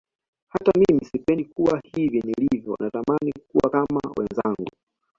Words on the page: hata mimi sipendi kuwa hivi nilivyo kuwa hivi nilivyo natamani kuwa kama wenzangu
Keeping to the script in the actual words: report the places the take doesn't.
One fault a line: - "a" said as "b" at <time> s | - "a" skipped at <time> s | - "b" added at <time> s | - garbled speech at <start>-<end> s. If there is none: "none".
- "kuwa hivi nilivyo" skipped at 2.8 s